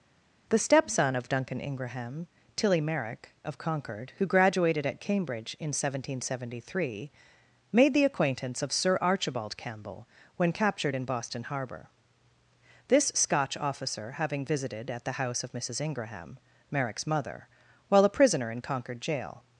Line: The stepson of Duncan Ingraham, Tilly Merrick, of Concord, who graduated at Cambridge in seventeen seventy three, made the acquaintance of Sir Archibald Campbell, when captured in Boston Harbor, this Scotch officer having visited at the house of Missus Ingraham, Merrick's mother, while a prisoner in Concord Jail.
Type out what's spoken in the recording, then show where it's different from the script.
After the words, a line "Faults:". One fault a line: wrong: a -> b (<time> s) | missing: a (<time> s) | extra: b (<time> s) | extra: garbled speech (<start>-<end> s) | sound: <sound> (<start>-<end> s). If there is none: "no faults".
The stepson of Duncan Ingraham, Tilly Merrick, of Concord, who graduated at Cambridge in seventeen seventy three, made the acquaintance of Sir Archibald Campbell, when captured in Boston Harbor, this Scotch officer having visited at the house of Missus Ingraham, Merrick's mother, while a prisoner in Concord Jail.
Faults:
no faults